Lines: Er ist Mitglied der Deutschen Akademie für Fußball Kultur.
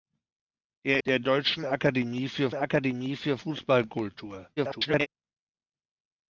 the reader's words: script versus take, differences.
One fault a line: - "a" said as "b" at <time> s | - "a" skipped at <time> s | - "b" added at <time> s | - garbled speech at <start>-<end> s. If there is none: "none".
- "ist Mitglied der Deutschen" said as "der Deutschen Akademie für" at 1.0 s
- garbled speech at 4.6-5.1 s